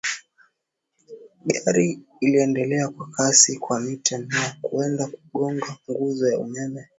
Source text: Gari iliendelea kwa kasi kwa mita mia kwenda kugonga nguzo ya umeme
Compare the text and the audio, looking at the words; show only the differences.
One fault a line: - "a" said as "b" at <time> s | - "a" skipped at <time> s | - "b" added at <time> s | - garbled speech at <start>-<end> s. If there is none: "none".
none